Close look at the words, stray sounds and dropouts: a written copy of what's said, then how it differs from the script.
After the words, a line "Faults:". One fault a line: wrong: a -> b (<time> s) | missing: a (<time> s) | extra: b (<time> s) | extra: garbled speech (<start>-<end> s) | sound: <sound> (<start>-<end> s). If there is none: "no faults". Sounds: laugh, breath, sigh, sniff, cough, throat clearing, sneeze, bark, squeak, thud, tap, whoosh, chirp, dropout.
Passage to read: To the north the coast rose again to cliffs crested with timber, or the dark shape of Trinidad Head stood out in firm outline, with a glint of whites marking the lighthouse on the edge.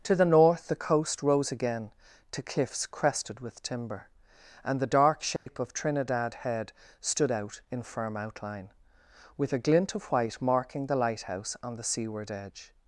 To the north the coast rose again to cliffs crested with timber, and the dark shape of Trinidad Head stood out in firm outline, with a glint of white marking the lighthouse on the seaward edge.
Faults:
wrong: or -> and (4.6 s)
sound: dropout (5.4-5.5 s)
wrong: whites -> white (10.0 s)
extra: seaward (11.8 s)